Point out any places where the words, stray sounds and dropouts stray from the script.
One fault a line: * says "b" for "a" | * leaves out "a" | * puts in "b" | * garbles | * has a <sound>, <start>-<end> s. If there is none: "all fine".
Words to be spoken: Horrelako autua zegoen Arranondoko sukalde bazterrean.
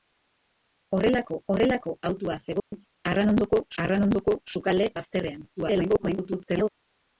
* puts in "horrelako"
* has a dropout, 2.6-2.7 s
* puts in "Arranondoko"
* garbles